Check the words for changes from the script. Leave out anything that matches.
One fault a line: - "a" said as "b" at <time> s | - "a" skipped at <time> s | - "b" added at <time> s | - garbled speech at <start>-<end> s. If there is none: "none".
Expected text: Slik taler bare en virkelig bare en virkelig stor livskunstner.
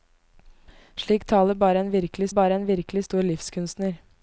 none